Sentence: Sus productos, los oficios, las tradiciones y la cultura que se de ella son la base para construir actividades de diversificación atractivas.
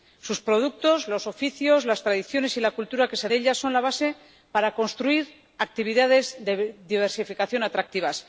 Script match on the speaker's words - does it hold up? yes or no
yes